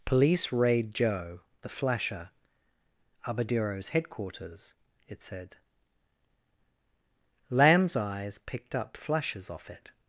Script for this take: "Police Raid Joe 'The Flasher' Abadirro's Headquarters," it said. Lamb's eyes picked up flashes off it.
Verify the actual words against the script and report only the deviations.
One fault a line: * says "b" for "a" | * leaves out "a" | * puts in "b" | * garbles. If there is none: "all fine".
all fine